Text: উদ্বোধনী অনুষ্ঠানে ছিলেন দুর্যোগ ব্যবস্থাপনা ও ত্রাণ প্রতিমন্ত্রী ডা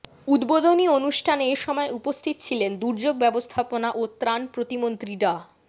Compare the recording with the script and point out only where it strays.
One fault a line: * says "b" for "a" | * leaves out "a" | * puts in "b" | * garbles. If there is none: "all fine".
* puts in "এ সময় উপস্থিত"